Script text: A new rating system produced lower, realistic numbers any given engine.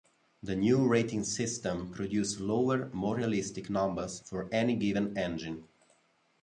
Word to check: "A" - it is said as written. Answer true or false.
false